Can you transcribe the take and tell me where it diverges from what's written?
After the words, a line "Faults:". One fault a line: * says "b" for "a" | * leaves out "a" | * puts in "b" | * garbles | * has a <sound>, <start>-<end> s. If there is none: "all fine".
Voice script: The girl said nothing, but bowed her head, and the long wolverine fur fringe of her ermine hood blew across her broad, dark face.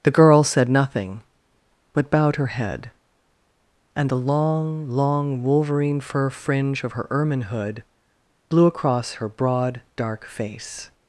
The girl said nothing, but bowed her head, and the long long wolverine fur fringe of her ermine hood blew across her broad, dark face.
Faults:
* puts in "long"